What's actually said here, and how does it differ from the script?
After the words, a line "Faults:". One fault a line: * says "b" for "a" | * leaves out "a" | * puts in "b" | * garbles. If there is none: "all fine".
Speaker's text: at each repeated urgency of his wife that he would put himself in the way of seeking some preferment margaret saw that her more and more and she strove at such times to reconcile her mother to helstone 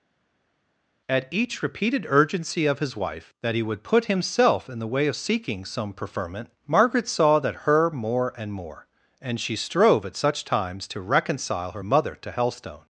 at each repeated urgency of his wife that he would put himself in the way of seeking some preferment margaret saw that her more and more and she strove at such times to reconcile her mother to helstone
Faults:
all fine